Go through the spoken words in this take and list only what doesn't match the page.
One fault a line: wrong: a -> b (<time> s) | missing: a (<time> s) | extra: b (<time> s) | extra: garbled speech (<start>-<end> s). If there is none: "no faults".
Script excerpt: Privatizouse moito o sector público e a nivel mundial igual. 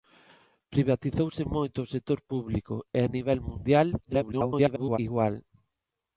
extra: garbled speech (4.0-5.0 s)